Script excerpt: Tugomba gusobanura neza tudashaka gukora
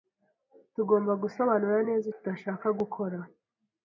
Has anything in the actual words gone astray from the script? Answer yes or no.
no